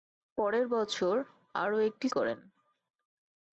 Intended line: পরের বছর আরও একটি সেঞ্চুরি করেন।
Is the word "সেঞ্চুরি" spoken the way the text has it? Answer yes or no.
no